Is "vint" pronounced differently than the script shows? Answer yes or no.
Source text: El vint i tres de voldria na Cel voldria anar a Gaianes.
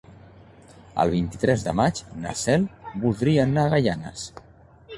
no